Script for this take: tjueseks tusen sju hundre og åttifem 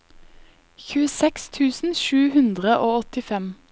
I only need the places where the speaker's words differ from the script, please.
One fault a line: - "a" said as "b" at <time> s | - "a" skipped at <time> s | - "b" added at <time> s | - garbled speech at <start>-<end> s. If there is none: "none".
none